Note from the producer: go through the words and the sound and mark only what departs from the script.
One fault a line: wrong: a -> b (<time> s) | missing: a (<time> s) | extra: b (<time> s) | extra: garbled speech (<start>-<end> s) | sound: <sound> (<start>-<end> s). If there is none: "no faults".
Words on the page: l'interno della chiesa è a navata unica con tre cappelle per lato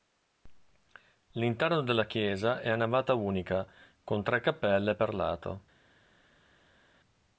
no faults